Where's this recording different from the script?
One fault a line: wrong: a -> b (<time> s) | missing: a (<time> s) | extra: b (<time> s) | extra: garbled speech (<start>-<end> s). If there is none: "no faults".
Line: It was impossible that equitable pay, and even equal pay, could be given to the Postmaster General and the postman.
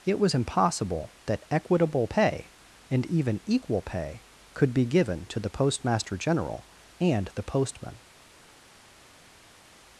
no faults